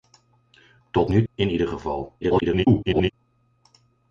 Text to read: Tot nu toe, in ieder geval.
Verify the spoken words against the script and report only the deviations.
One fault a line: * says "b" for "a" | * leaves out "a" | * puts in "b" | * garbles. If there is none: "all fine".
* leaves out "toe"
* garbles